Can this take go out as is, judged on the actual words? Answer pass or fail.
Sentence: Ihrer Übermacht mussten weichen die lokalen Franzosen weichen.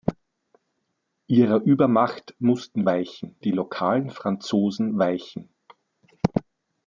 pass